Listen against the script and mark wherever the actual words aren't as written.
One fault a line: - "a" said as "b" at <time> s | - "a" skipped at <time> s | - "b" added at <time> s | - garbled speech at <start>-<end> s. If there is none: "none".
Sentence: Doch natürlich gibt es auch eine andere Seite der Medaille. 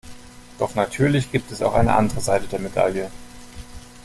none